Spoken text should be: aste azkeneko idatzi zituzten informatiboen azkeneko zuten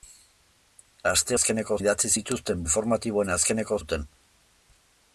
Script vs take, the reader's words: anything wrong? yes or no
no